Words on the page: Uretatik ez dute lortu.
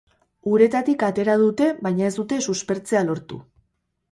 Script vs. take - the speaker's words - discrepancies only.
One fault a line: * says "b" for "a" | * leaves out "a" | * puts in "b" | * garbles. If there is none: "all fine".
* puts in "atera dute baina"
* puts in "suspertzea"